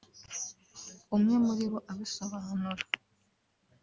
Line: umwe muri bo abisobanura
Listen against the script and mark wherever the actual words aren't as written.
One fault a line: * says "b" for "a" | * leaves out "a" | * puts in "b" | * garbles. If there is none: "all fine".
all fine